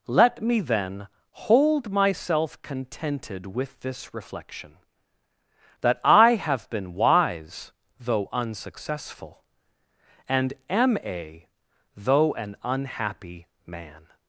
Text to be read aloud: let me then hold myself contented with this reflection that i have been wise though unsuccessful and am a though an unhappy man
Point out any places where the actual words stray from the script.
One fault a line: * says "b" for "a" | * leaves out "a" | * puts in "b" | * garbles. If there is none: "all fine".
all fine